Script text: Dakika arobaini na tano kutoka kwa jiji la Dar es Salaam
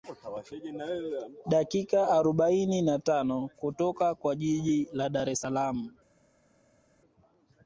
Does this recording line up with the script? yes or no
yes